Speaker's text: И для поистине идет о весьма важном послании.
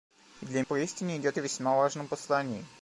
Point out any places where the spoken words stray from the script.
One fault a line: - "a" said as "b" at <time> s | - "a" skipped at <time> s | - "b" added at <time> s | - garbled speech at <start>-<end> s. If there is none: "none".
none